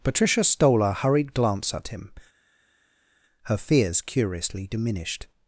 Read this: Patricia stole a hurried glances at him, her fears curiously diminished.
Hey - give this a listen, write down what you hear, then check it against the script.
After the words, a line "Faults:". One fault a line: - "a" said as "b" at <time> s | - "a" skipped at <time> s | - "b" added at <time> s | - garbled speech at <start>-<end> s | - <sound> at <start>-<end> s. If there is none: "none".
Patricia stole a hurried glance at him, her fears curiously diminished.
Faults:
- "glances" said as "glance" at 1.4 s